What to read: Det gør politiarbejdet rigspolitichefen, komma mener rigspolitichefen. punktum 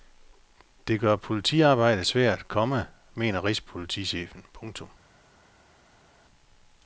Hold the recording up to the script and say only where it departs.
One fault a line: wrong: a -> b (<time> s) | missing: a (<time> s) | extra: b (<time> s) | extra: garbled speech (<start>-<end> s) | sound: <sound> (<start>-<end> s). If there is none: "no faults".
wrong: rigspolitichefen -> svært (2.0 s)